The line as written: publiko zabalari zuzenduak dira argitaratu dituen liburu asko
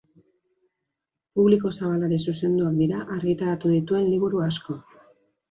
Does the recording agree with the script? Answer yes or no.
yes